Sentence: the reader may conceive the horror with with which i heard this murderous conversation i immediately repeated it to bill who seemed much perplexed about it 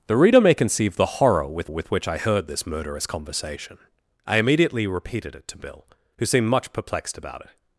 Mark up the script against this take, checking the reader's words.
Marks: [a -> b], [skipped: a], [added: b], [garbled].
the reader may conceive the horror with with which i heard this murderous conversation i immediately repeated it to bill who seemed much perplexed about it